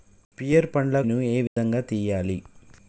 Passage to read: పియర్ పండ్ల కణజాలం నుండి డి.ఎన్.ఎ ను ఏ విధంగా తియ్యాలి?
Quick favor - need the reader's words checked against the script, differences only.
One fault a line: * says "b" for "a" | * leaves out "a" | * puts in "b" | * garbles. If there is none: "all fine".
* leaves out "కణజాలం నుండి డి.ఎన్.ఎ"